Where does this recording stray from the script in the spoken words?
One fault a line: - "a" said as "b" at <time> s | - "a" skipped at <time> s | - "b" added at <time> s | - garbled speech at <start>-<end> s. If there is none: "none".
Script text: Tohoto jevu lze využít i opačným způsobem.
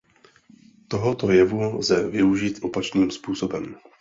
- "i" skipped at 2.6 s